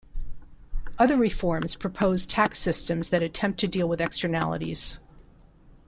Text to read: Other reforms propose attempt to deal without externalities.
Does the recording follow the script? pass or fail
fail